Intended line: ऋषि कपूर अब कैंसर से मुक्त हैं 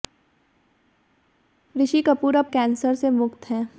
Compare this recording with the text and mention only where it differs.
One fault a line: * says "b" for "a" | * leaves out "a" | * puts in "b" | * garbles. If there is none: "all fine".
all fine